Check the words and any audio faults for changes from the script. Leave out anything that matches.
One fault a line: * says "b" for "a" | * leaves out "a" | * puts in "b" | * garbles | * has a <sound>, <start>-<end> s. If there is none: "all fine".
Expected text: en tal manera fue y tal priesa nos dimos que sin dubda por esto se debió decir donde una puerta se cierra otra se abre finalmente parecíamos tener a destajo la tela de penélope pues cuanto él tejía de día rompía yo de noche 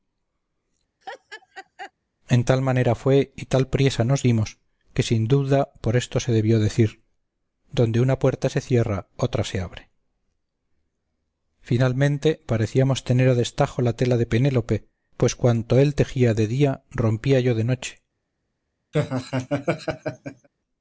* has a laugh, 1.0-1.9 s
* has a laugh, 18.9-20.5 s